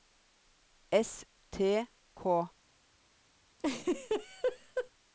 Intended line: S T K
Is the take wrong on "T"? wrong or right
right